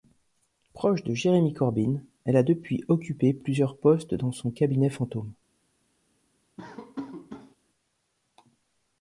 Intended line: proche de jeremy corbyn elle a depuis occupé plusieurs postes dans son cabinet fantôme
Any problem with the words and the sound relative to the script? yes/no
yes